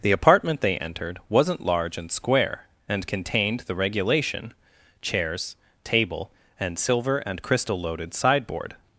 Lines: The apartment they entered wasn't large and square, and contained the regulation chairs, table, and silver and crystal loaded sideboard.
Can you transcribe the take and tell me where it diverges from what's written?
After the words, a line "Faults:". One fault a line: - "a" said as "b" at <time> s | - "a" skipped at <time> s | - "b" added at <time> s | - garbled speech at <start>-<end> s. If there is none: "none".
The apartment they entered wasn't large and square, and contained the regulation chairs, table, and silver and crystal loaded sideboard.
Faults:
none